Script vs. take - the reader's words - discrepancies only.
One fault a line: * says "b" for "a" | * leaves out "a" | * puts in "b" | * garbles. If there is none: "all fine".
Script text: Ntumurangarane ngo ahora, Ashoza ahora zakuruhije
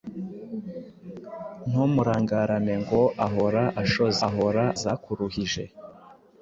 all fine